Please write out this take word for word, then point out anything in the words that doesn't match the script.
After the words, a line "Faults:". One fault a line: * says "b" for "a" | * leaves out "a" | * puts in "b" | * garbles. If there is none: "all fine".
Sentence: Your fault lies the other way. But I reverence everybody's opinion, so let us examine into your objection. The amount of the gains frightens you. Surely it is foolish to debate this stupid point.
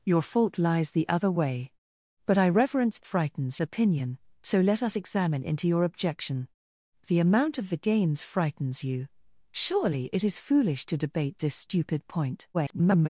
Your fault lies the other way. But I reverence frightens opinion, so let us examine into your objection. The amount of the gains frightens you. Surely it is foolish to debate this stupid point. [garbled]
Faults:
* says "frightens" for "everybody's"
* garbles